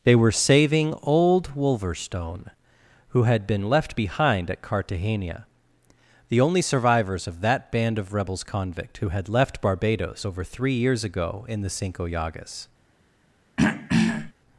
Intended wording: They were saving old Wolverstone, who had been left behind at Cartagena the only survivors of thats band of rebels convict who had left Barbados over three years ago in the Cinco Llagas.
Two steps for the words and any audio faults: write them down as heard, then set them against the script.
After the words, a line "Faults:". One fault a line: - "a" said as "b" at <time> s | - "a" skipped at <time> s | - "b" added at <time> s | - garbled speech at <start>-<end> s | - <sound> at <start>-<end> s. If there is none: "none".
They were saving old Wolverstone, who had been left behind at Cartagena the only survivors of that band of rebels convict who had left Barbados over three years ago in the Cinco Llagas.
Faults:
- "thats" said as "that" at 7.4 s
- throat clearing at 13.6-14.3 s